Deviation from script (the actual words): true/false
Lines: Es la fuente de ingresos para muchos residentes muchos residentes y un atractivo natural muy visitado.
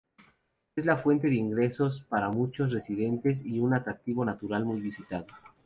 true